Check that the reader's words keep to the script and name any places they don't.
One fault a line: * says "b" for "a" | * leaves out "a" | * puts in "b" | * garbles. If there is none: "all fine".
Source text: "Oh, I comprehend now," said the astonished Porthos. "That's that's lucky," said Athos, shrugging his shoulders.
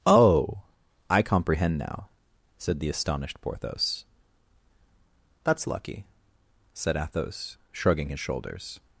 * leaves out "that's"